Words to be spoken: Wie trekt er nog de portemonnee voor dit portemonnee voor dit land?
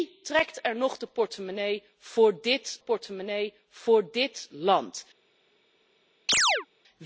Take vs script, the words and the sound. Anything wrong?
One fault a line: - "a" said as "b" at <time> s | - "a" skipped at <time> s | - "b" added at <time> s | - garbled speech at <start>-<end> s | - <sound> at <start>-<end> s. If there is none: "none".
- chirp at 6.3-6.7 s